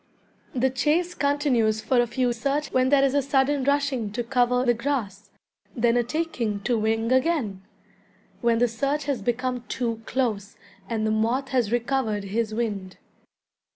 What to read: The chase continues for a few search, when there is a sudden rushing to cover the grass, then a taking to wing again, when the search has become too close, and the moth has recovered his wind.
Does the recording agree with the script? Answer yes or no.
yes